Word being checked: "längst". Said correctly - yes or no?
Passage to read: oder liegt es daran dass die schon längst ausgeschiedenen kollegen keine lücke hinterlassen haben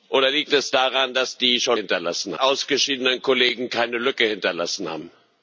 no